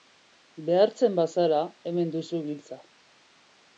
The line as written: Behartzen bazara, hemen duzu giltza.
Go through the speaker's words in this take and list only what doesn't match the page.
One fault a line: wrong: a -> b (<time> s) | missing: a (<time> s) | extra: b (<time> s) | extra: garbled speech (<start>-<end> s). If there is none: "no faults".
no faults